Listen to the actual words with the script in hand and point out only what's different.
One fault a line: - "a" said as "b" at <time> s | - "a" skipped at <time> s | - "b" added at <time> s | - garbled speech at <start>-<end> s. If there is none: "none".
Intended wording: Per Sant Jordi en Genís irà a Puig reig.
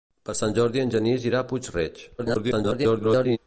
- garbled speech at 2.2-3.4 s